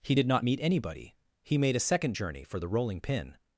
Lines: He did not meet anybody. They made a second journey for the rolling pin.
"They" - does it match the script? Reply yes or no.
no